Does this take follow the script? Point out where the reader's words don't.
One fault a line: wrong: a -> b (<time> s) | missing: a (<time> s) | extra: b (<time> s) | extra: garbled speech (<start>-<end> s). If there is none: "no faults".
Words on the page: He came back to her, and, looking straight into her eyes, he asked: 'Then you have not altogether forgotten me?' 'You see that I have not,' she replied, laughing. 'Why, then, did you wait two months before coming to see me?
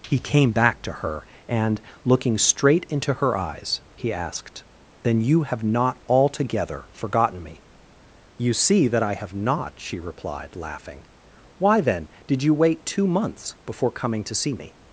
no faults